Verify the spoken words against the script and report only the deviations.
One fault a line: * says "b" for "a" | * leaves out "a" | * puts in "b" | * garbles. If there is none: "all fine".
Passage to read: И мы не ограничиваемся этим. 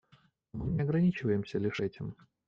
* says "Но" for "И"
* puts in "лишь"